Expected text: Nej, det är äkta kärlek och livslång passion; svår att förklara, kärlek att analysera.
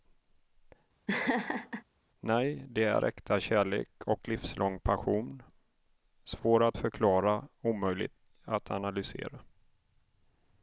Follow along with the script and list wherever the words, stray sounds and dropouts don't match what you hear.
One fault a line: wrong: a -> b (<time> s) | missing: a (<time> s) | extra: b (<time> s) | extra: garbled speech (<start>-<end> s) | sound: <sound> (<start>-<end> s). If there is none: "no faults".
sound: laugh (1.1-1.8 s)
wrong: kärlek -> omöjlig (7.6 s)